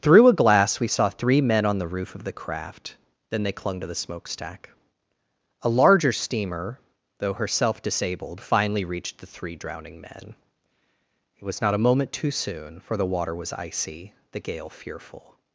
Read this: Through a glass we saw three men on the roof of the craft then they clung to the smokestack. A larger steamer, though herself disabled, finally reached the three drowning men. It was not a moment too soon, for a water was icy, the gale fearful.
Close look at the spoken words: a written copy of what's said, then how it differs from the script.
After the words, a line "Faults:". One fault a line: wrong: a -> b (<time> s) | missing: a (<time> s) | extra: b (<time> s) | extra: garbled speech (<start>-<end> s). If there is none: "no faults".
Through a glass we saw three men on the roof of the craft then they clung to the smokestack. A larger steamer, though herself disabled, finally reached the three drowning men. It was not a moment too soon, for the water was icy, the gale fearful.
Faults:
wrong: a -> the (13.0 s)